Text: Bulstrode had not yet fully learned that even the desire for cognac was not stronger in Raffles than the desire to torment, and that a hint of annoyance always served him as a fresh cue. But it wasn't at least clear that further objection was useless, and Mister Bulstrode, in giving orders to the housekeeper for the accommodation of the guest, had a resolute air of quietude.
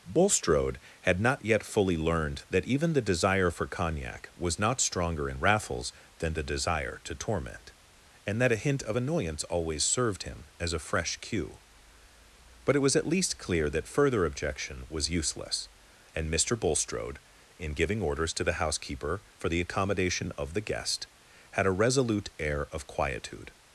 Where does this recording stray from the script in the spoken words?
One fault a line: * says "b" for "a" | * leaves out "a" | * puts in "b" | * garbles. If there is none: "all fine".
* says "was" for "wasn't"